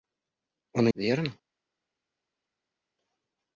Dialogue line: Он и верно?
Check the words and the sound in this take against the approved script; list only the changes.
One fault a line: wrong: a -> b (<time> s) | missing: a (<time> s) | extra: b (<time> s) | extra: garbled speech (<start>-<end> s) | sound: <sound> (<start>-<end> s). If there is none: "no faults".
no faults